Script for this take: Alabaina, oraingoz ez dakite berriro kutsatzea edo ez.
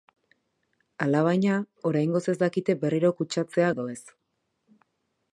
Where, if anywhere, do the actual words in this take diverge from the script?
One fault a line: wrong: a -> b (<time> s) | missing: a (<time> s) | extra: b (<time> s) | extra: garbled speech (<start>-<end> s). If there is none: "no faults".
no faults